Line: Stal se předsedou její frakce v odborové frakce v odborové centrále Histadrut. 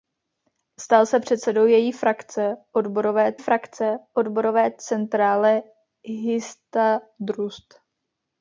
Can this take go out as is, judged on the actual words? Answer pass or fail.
pass